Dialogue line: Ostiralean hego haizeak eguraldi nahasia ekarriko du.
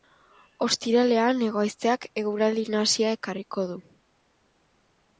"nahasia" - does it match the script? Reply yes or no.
yes